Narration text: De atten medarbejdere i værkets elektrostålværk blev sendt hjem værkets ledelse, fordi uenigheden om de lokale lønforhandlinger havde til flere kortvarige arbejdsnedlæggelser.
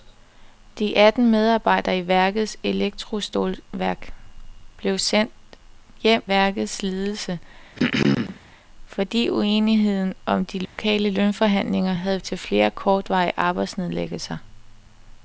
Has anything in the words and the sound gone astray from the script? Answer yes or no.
yes